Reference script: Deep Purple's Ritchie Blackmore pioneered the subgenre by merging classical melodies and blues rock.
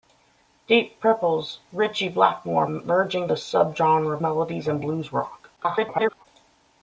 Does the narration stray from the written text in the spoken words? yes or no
yes